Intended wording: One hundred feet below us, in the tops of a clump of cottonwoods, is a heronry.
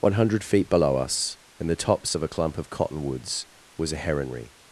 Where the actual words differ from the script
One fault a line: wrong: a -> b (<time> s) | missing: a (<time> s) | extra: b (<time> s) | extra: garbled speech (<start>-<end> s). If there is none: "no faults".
wrong: is -> was (3.8 s)